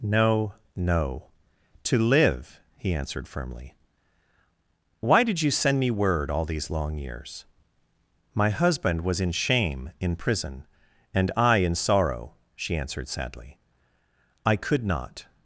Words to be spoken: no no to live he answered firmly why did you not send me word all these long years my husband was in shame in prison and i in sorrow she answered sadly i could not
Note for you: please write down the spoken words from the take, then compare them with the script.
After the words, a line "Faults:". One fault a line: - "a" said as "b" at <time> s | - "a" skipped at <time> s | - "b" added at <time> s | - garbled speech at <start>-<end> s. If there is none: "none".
no no to live he answered firmly why did you send me word all these long years my husband was in shame in prison and i in sorrow she answered sadly i could not
Faults:
- "not" skipped at 5.5 s